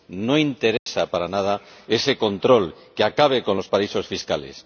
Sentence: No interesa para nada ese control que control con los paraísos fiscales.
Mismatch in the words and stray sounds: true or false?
true